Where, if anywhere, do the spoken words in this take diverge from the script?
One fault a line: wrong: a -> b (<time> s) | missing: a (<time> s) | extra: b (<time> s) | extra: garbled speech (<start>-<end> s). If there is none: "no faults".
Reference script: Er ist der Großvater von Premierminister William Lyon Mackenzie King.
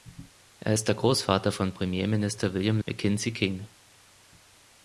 missing: Lyon (2.8 s)